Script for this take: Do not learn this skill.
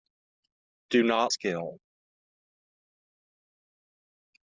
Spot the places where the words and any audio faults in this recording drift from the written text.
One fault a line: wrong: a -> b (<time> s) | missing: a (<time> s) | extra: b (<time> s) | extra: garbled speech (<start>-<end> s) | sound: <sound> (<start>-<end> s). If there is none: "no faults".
missing: learn this (1.4 s)